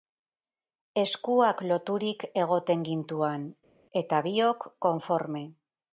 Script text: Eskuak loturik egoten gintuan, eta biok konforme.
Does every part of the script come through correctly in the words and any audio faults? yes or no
yes